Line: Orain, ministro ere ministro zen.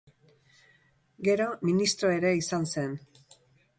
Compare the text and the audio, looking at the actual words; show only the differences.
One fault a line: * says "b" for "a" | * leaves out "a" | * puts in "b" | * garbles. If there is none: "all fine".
* says "Gero" for "Orain"
* says "izan" for "ministro"